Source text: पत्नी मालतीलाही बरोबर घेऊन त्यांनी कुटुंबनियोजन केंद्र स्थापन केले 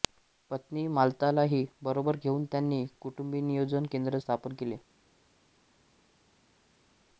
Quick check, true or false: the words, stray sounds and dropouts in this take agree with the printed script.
true